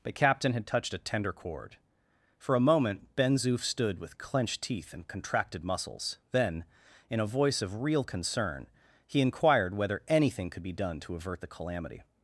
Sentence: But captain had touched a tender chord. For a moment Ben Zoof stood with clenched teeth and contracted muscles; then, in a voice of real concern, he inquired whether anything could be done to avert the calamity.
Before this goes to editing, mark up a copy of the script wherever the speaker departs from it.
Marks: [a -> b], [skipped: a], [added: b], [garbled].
But captain had touched a tender chord. For a moment Ben Zoof stood with clenched teeth and contracted muscles; then, in a voice of real concern, he inquired whether anything could be done to avert the calamity.